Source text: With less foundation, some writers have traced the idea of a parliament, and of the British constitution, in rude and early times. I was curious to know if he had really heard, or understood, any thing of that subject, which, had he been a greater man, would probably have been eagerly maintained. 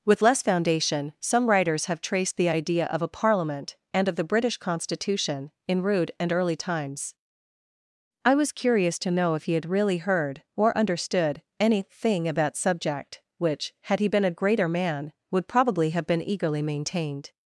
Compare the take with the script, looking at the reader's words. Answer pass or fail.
fail